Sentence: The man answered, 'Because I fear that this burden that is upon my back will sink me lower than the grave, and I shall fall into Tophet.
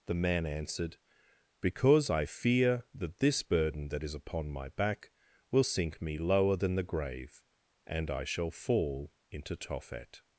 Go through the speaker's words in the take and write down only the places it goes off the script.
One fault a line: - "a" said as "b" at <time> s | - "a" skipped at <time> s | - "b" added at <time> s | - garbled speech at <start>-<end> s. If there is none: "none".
none